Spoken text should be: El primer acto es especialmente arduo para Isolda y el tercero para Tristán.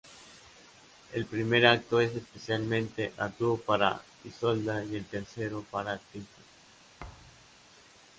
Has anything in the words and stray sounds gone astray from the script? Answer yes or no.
yes